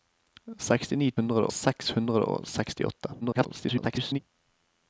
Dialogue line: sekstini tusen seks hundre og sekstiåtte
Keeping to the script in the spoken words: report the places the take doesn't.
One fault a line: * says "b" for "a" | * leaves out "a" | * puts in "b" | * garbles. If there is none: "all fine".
* says "hundre" for "tusen"
* garbles